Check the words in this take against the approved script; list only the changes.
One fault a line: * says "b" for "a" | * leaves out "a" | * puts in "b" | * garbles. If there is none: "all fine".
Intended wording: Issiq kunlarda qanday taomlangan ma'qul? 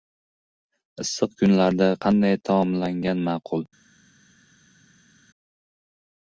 all fine